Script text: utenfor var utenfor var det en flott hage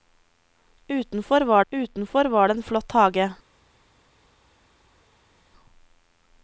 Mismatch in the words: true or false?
false